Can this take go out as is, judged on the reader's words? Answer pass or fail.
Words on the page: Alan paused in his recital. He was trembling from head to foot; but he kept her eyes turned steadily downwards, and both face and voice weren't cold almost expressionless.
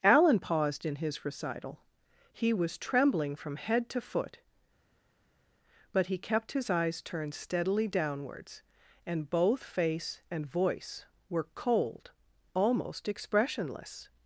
fail